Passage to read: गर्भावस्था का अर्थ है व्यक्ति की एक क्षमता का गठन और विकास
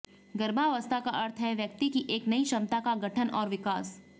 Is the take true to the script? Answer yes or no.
no